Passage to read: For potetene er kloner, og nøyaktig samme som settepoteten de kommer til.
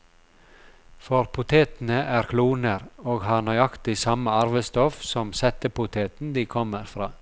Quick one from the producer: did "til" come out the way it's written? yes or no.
no